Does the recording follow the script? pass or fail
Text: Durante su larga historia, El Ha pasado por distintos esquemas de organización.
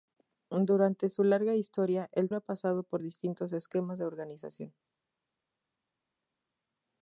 pass